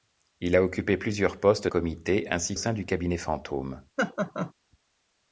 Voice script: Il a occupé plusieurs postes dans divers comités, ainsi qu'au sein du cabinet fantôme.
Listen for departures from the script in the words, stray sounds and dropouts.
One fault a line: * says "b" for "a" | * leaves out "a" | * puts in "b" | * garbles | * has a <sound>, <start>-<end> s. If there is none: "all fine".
* leaves out "dans divers"
* leaves out "qu'au"
* has a laugh, 4.0-4.5 s